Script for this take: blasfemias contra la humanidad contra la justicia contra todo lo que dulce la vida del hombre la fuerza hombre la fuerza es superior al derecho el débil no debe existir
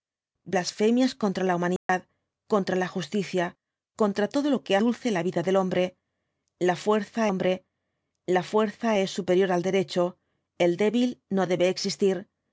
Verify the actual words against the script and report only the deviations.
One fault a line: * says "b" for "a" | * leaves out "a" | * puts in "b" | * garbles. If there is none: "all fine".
all fine